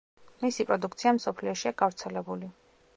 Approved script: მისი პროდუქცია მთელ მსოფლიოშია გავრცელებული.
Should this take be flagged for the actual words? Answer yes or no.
yes